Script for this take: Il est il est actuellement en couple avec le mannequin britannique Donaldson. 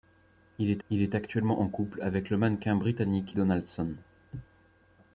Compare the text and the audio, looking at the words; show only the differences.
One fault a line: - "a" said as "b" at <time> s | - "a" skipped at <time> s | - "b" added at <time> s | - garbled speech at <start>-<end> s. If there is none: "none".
none